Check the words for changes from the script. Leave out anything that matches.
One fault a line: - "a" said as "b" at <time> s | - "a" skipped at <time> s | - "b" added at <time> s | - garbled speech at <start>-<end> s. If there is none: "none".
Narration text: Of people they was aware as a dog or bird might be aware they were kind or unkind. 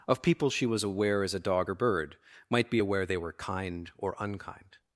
- "they" said as "she" at 0.5 s